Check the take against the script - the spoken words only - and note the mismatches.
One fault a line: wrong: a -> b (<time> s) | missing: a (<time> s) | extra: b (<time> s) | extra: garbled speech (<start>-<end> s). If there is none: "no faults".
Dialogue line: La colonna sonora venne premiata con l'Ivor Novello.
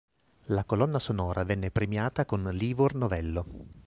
no faults